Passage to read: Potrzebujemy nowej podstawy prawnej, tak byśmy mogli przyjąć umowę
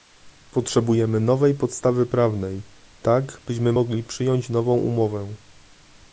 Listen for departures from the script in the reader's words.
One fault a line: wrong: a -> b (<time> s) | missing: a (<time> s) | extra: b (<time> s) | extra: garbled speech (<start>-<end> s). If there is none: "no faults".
extra: nową (4.5 s)